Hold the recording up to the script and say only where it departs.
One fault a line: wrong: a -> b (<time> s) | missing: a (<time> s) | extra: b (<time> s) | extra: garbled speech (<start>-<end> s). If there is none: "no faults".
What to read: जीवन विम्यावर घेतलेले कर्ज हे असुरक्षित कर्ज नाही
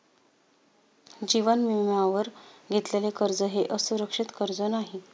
no faults